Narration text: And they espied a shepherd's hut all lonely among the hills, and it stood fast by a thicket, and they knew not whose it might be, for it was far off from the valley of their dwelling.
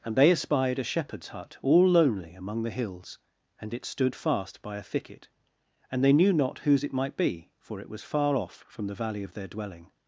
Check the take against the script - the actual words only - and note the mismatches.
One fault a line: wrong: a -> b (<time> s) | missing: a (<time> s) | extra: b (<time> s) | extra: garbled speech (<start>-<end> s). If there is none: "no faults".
no faults